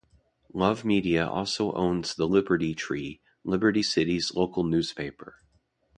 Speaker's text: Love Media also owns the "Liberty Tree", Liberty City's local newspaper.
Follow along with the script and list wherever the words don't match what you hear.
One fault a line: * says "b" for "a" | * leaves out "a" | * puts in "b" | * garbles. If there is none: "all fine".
all fine